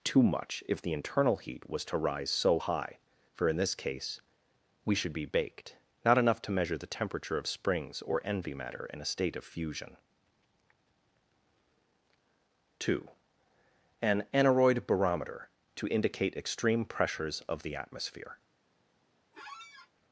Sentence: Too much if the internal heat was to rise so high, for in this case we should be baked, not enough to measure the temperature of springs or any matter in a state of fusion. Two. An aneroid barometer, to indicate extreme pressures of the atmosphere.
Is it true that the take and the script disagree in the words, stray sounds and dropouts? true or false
true